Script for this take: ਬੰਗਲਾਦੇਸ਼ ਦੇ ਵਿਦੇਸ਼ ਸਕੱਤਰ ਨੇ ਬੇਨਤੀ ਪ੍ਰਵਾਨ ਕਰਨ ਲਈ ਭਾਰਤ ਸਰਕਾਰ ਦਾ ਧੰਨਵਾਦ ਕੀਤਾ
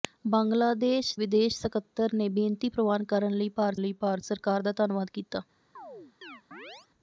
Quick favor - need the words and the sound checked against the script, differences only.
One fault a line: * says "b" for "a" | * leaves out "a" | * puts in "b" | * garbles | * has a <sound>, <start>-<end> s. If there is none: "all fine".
* leaves out "ਦੇ"
* puts in "ਲਈ ਭਾਰਤ"
* has a chirp, 5.8-6.9 s